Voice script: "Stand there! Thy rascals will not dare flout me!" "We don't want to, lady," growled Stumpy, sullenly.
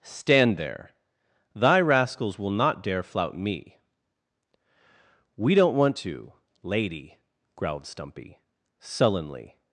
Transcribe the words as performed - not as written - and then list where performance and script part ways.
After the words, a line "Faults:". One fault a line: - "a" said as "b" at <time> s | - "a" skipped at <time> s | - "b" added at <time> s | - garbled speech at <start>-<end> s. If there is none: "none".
"Stand there! Thy rascals will not dare flout me!" "We don't want to, lady," growled Stumpy, sullenly.
Faults:
none